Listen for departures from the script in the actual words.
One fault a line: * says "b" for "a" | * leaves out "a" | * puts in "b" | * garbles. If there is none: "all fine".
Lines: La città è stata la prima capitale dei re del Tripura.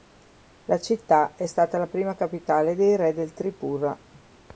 all fine